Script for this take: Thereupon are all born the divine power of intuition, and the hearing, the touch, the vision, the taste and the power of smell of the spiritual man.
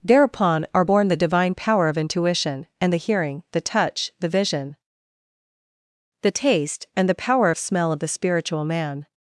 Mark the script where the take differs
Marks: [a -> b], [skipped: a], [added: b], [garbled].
Thereupon are [skipped: all] born the divine power of intuition, and the hearing, the touch, the vision, the taste and the power of smell of the spiritual man.